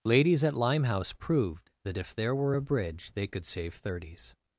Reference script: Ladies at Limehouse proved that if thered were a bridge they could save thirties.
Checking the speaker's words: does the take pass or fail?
fail